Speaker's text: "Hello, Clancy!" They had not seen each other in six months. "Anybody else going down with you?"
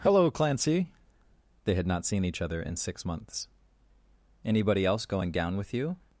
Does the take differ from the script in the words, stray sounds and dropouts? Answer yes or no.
no